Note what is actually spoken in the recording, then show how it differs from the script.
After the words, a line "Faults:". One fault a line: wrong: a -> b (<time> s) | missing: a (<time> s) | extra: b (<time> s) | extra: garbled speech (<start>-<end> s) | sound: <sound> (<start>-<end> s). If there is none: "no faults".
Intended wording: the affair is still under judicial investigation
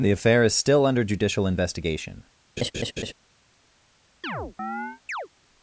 the affair is still under judicial investigation
Faults:
sound: laugh (2.6-3.1 s)
sound: chirp (4.2-5.3 s)